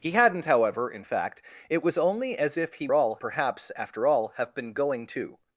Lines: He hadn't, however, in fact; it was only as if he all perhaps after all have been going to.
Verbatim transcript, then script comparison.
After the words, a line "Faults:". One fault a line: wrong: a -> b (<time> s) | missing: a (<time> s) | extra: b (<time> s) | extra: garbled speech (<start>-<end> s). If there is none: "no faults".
He hadn't, however, in fact; it was only as if he all perhaps after all have been going to.
Faults:
no faults